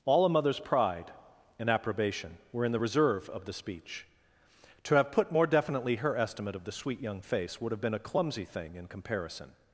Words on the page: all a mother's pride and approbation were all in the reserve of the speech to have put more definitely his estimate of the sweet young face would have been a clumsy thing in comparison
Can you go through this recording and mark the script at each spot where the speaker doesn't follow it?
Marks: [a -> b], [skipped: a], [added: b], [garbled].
all a mother's pride and approbation were [skipped: all] in the reserve of the speech to have put more definitely [his -> her] estimate of the sweet young face would have been a clumsy thing in comparison